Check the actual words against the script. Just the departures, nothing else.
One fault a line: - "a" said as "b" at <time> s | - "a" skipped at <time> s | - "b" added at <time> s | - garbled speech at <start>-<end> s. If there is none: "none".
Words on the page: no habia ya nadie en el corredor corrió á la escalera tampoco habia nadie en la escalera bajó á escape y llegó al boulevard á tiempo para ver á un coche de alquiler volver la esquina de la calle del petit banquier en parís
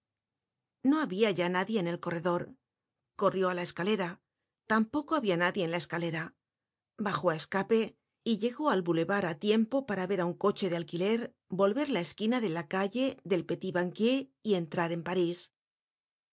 - "y entrar" added at 14.4 s